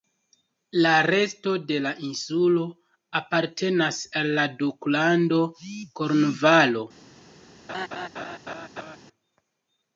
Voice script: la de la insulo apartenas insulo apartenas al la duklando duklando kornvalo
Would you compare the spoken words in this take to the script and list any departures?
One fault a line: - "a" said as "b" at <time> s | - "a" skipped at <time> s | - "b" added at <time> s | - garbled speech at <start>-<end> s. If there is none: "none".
- "resto" added at 1.1 s
- "insulo apartenas" skipped at 4.0 s
- "duklando" skipped at 5.4 s